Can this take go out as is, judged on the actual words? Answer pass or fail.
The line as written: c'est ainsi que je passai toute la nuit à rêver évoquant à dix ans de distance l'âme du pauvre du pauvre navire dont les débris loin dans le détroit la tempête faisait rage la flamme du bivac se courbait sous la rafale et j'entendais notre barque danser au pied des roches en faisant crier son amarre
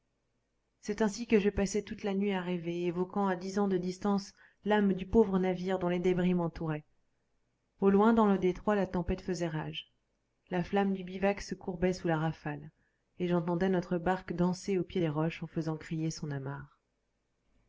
fail